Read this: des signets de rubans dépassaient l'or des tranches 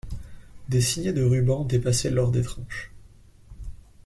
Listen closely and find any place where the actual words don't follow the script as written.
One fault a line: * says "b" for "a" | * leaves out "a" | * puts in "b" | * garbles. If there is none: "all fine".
all fine